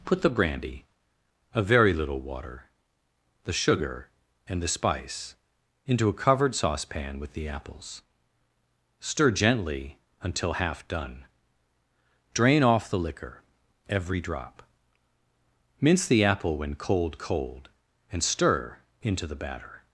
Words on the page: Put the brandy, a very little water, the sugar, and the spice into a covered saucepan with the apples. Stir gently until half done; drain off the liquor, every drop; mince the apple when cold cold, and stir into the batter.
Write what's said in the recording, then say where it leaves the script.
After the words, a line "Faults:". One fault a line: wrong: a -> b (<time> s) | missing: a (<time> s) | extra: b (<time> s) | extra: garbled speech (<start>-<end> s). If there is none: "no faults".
Put the brandy, a very little water, the sugar, and the spice into a covered saucepan with the apples. Stir gently until half done; drain off the liquor, every drop; mince the apple when cold cold, and stir into the batter.
Faults:
no faults